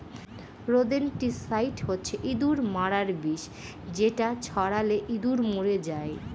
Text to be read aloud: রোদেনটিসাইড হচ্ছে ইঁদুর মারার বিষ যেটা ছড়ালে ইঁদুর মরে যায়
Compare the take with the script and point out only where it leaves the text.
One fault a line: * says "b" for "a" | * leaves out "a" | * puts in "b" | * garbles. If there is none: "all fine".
all fine